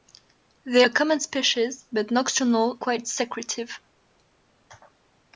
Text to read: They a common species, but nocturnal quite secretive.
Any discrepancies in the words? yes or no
no